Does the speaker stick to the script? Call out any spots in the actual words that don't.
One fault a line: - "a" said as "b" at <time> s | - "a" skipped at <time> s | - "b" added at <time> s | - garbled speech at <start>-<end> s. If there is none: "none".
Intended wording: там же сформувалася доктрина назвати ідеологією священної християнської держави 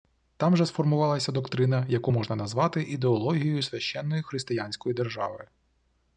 - "яку можна" added at 1.9 s